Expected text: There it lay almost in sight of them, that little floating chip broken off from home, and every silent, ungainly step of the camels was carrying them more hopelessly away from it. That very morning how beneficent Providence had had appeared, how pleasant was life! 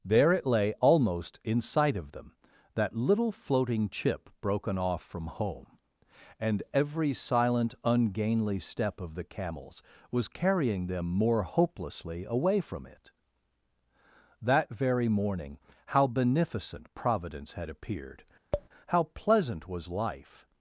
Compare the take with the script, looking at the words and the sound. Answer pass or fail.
fail